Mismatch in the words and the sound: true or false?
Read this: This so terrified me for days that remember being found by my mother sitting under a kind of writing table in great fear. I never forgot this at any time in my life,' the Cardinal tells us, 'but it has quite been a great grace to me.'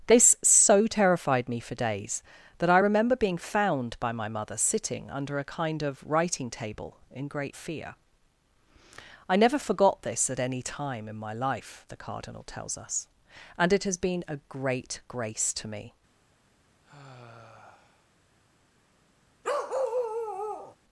true